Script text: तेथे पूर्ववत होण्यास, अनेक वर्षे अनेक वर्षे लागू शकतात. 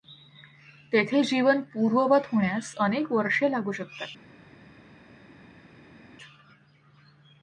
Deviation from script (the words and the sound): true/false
true